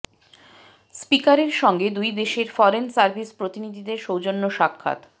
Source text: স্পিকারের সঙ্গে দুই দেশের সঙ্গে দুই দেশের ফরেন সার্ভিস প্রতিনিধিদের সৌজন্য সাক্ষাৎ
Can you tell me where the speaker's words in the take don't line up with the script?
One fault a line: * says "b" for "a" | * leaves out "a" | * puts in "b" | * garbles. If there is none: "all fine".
* leaves out "সঙ্গে দুই দেশের"